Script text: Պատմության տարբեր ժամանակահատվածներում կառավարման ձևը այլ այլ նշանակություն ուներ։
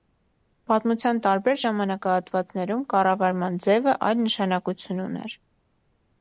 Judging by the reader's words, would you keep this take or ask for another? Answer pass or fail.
fail